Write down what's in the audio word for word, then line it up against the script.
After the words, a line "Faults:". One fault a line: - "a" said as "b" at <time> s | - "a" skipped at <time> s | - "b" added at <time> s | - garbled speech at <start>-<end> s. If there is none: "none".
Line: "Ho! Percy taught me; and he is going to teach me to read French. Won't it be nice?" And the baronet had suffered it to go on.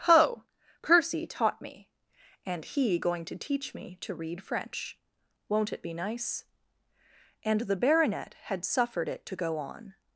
"Ho! Percy taught me; and he going to teach me to read French. Won't it be nice?" And the baronet had suffered it to go on.
Faults:
- "is" skipped at 3.0 s